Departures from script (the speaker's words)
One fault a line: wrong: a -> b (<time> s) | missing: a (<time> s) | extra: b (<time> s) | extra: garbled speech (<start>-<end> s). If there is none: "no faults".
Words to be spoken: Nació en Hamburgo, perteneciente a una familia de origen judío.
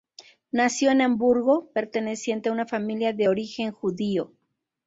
no faults